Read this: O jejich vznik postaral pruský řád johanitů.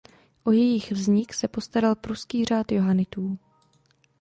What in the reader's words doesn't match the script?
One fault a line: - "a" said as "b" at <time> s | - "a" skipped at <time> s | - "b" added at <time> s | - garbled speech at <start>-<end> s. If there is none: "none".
- "se" added at 1.3 s